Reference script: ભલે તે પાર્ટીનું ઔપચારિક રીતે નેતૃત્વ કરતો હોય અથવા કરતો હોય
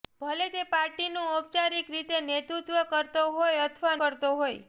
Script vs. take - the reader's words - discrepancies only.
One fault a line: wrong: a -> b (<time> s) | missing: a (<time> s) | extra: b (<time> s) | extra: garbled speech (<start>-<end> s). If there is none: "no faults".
no faults